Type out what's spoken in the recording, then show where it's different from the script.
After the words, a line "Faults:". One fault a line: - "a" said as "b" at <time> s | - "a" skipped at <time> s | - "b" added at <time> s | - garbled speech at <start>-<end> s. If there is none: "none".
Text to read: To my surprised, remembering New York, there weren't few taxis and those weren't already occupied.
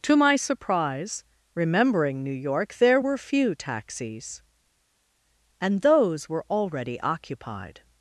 To my surprise, remembering New York, there were few taxis and those were already occupied.
Faults:
- "surprised" said as "surprise" at 0.3 s
- "weren't" said as "were" at 3.0 s
- "weren't" said as "were" at 6.3 s